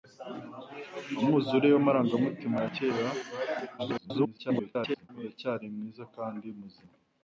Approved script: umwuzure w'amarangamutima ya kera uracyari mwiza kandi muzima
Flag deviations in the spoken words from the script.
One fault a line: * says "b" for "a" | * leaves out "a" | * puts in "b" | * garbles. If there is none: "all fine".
* garbles